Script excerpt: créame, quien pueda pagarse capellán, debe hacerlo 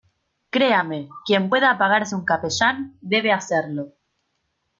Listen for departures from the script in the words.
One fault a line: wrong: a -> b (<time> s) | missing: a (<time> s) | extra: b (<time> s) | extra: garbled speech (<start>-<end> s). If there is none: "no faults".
extra: un (2.1 s)